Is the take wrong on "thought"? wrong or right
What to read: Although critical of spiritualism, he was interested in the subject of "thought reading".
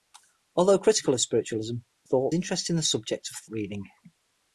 wrong